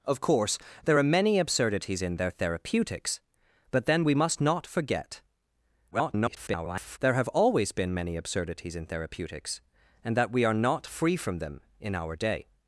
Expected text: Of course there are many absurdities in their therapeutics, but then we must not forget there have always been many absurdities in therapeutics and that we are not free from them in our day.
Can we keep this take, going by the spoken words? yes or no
no